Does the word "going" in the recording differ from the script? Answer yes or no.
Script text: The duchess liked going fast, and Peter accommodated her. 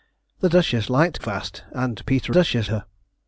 yes